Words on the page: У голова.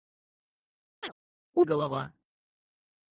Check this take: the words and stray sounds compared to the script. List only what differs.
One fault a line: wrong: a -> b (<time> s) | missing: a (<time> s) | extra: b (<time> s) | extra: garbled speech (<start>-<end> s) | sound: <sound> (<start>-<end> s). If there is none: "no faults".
sound: chirp (1.0-1.1 s)